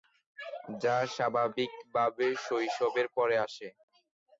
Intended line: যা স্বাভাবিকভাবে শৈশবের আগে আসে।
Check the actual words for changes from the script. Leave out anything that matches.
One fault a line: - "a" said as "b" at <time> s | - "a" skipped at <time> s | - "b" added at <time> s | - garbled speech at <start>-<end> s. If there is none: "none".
- "আগে" said as "পরে" at 3.1 s